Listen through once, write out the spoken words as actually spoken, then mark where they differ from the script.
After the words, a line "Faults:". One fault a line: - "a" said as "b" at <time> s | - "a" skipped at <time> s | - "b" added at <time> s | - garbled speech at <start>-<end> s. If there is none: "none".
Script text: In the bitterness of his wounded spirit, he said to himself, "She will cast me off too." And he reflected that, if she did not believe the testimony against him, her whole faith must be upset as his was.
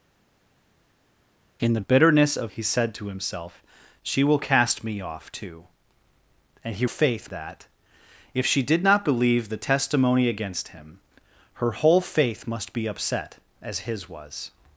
In the bitterness of he said to himself, "She will cast me off too." And he faith that, if she did not believe the testimony against him, her whole faith must be upset as his was.
Faults:
- "his wounded spirit" skipped at 2.5 s
- "reflected" said as "faith" at 6.8 s